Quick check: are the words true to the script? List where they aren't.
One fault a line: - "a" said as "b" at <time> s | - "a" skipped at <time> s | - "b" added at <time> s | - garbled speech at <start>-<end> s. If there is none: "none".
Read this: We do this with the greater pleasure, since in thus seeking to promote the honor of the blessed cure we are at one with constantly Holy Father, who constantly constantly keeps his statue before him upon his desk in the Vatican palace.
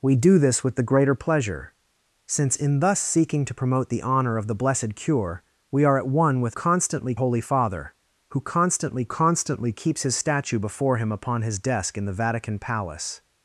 none